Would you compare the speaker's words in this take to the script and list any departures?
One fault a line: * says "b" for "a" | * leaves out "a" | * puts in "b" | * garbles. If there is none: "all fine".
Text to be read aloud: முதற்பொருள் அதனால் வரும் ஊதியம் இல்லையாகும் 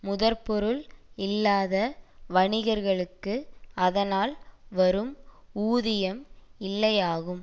* puts in "இல்லாத வணிகர்களுக்கு"